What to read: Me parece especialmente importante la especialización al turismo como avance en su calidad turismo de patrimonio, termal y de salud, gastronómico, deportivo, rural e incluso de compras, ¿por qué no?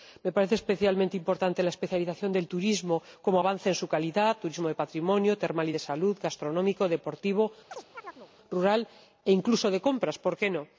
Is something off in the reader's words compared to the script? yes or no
yes